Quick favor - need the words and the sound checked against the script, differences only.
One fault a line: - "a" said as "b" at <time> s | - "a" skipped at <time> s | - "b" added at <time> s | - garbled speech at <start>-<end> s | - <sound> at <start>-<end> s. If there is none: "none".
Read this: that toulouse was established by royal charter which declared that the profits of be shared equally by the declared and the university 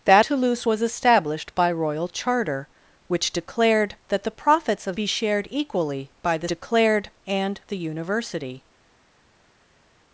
none